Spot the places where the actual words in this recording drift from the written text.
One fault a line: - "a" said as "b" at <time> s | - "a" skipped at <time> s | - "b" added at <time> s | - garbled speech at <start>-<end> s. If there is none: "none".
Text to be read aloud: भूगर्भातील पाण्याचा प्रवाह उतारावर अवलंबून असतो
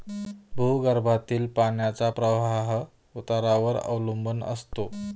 none